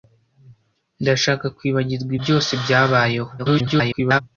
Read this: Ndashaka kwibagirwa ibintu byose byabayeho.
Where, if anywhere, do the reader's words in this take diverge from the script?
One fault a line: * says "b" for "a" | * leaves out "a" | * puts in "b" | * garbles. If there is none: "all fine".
* leaves out "ibintu"
* garbles